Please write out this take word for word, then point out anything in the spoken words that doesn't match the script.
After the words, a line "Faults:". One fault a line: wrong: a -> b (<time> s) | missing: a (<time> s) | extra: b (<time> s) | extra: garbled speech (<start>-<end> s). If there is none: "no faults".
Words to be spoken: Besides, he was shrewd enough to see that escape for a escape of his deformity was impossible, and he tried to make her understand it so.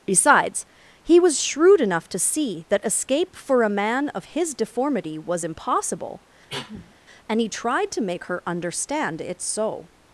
Besides, he was shrewd enough to see that escape for a man of his deformity was impossible, and he tried to make her understand it so.
Faults:
wrong: escape -> man (3.7 s)